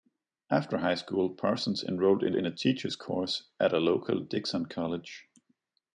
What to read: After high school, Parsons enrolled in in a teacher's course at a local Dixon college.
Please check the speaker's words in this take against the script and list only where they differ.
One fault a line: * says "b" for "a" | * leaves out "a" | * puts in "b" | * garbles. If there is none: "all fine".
all fine